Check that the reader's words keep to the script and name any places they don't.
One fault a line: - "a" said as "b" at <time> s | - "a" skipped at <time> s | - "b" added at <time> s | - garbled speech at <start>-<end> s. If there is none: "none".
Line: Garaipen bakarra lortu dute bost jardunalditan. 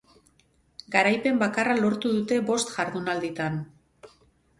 none